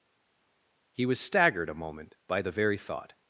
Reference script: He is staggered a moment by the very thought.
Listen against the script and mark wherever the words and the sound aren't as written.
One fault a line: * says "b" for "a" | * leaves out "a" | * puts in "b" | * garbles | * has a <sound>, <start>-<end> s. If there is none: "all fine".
* says "was" for "is"